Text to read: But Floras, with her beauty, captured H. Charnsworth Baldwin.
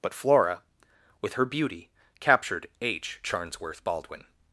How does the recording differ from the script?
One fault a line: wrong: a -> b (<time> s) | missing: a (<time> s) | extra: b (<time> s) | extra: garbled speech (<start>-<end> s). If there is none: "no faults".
wrong: Floras -> Flora (0.1 s)